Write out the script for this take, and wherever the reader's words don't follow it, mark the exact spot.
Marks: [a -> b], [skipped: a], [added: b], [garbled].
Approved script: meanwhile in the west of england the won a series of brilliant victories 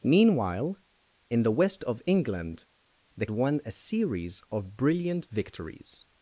meanwhile in the west of england the won a series of brilliant victories